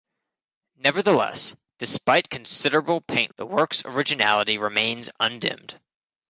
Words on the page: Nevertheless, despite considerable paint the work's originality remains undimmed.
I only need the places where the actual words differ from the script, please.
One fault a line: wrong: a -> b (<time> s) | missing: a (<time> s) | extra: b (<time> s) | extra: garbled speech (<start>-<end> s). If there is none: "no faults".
no faults